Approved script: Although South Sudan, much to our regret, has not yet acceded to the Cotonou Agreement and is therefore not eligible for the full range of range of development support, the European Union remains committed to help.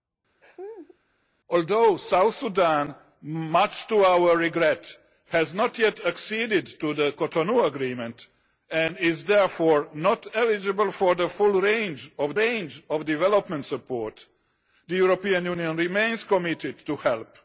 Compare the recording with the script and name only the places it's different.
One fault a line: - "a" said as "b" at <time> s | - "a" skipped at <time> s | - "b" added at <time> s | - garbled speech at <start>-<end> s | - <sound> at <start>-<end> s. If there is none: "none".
- laugh at 0.4-1.0 s